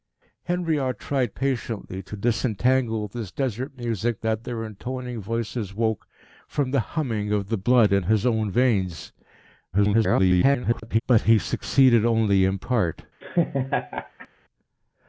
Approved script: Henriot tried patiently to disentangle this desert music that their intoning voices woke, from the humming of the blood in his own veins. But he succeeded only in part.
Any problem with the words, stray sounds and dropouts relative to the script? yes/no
yes